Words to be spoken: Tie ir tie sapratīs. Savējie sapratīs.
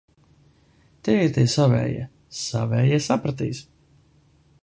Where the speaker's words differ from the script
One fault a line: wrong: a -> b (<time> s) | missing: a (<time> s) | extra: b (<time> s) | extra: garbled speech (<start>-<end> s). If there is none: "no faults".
wrong: sapratīs -> savējie (1.6 s)